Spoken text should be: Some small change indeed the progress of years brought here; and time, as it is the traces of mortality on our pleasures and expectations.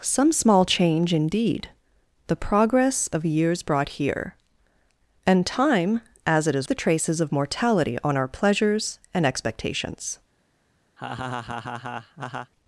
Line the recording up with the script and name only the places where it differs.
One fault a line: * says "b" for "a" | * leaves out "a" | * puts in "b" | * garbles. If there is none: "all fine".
all fine